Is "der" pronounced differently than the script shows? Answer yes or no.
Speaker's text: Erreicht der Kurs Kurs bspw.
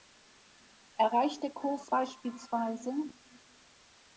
no